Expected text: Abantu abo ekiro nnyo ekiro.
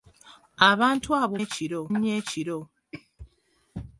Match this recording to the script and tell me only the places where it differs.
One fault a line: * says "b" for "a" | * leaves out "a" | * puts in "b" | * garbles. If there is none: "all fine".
all fine